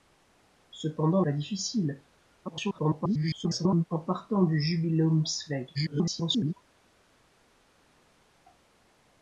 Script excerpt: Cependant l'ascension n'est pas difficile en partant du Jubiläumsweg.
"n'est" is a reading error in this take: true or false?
true